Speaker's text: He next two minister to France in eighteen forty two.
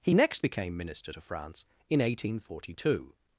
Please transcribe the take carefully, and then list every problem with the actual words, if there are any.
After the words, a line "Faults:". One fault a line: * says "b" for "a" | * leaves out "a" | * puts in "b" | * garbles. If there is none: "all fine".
He next became minister to France in eighteen forty two.
Faults:
* says "became" for "two"